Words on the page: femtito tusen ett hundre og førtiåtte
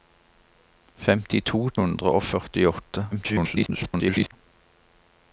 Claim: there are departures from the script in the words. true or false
true